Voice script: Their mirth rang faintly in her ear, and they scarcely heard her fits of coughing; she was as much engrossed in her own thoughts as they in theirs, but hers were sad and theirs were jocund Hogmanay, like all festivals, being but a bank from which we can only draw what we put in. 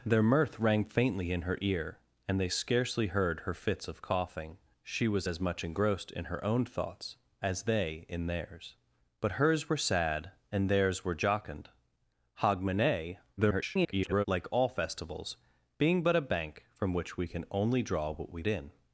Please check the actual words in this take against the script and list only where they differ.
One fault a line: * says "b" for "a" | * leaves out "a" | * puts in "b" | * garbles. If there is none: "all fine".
* garbles
* leaves out "put"